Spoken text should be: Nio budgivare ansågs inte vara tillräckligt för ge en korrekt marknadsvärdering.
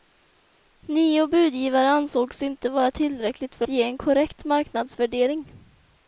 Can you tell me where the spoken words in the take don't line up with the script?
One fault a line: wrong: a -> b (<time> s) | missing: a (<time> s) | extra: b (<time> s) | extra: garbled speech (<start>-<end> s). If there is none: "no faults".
no faults